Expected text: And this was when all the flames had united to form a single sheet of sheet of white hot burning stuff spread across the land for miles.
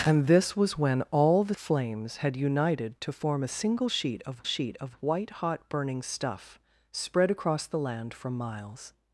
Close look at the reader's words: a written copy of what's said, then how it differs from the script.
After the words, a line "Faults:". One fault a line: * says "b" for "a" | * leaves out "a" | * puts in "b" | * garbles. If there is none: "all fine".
And this was when all the flames had united to form a single sheet of sheet of white hot burning stuff spread across the land for miles.
Faults:
all fine